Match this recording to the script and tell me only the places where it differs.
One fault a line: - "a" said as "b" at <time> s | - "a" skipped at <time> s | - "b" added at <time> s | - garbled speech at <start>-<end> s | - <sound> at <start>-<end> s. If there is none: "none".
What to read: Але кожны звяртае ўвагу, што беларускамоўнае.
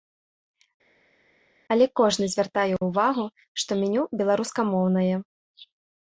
- "меню" added at 3.9 s